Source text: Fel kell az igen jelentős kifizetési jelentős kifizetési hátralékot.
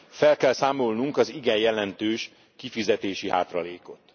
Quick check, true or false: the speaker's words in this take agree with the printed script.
false